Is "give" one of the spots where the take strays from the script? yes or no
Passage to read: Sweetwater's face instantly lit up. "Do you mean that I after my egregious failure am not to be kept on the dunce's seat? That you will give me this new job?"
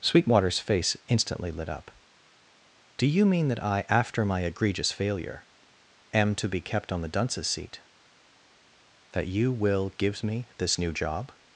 yes